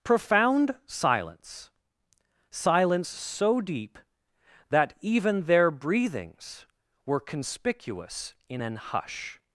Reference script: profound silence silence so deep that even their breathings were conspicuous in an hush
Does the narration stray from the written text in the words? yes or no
no